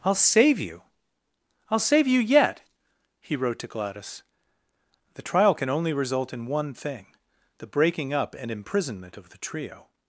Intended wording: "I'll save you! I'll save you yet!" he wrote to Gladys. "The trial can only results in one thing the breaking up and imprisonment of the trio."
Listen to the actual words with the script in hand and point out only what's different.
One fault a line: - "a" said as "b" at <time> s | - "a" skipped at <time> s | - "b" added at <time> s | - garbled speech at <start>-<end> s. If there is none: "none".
- "results" said as "result" at 5.9 s